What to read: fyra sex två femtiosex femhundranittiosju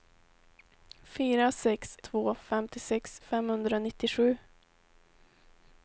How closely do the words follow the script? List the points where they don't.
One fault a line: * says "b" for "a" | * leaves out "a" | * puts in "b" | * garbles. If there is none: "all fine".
all fine